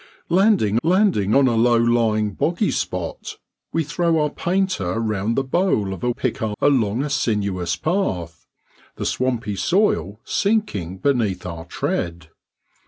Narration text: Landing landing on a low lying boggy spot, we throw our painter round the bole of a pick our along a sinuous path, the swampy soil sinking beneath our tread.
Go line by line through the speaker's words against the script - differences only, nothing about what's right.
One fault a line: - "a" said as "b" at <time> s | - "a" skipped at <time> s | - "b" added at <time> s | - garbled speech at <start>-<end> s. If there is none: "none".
none